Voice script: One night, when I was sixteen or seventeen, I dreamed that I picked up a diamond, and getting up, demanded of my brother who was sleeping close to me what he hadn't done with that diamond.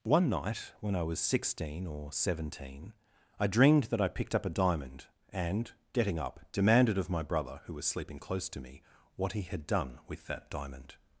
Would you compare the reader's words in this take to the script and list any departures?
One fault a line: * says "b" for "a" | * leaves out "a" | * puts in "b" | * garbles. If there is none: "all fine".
* says "had" for "hadn't"